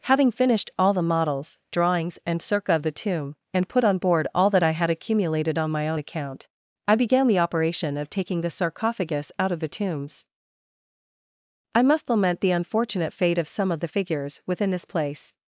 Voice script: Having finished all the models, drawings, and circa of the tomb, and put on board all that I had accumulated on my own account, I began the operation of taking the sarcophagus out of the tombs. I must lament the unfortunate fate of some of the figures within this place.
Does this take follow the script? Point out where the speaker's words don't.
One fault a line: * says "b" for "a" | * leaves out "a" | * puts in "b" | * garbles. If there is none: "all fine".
all fine